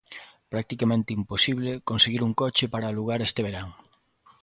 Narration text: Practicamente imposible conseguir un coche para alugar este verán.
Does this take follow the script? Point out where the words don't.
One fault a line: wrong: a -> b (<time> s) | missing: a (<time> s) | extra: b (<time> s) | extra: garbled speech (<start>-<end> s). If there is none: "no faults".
no faults